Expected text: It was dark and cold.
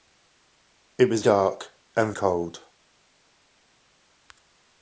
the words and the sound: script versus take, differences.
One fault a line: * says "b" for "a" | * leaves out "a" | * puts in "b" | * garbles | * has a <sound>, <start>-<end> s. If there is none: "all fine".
all fine